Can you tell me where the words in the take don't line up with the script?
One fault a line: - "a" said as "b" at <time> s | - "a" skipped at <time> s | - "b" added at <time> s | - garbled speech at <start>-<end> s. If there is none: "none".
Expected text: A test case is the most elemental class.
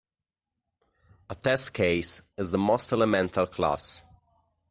none